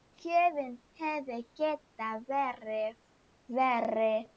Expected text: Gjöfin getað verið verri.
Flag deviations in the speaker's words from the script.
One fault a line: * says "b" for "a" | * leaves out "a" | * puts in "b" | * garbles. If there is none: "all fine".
* puts in "hefði"